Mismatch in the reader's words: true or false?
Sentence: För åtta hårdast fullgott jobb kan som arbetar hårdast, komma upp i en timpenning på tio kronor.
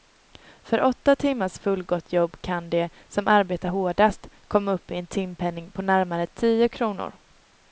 true